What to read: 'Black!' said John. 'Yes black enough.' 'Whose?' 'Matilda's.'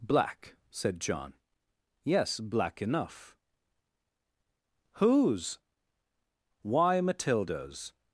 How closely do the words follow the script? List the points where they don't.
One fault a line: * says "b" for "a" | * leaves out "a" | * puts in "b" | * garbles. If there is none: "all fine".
* puts in "Why"